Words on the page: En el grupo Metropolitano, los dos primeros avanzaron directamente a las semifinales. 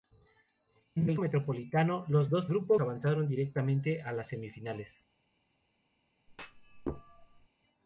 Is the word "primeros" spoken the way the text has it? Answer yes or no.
no